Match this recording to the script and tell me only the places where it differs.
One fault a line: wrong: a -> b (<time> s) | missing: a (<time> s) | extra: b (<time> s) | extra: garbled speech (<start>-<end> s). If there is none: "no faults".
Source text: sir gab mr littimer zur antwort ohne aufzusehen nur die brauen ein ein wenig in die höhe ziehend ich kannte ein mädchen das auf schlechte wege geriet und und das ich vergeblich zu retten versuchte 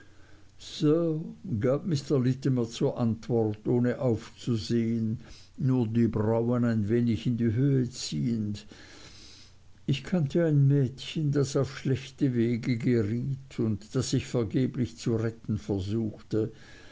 missing: ein (6.9 s)
missing: und (13.9 s)